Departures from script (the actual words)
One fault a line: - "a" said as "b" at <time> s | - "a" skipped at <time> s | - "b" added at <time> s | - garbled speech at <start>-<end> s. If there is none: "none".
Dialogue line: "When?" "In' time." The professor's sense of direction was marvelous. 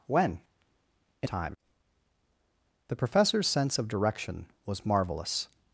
none